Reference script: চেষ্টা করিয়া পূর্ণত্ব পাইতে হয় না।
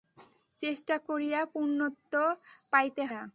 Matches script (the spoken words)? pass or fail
fail